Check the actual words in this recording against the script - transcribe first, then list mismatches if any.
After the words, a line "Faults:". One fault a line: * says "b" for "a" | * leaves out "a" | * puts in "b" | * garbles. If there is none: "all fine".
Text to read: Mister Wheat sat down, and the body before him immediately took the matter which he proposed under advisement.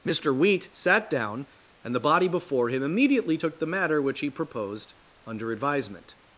Mister Wheat sat down, and the body before him immediately took the matter which he proposed under advisement.
Faults:
all fine